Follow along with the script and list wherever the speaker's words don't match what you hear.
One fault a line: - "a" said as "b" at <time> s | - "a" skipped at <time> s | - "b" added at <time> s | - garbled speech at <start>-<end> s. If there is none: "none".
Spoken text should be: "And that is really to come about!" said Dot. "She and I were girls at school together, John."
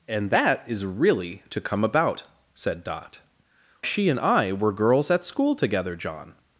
none